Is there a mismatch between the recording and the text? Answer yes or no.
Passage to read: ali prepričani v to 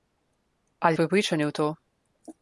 no